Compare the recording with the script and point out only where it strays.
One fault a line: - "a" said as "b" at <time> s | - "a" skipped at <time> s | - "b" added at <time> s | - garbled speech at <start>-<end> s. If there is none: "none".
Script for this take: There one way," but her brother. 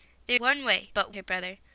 none